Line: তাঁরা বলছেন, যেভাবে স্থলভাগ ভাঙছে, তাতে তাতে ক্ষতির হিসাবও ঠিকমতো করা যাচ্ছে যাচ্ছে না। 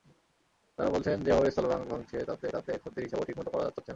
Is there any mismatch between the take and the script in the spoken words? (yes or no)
no